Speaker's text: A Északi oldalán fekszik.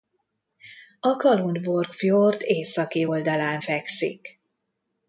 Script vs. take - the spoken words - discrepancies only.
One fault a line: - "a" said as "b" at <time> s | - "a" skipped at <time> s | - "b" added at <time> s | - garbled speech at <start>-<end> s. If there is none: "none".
- "Kalundborg fjord" added at 1.1 s